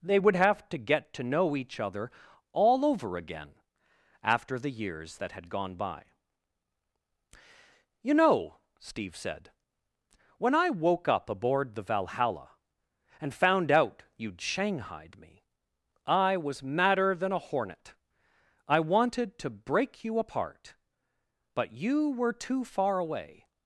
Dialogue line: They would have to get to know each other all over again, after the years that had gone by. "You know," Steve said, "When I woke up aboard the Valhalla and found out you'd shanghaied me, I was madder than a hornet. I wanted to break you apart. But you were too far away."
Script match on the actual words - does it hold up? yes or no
yes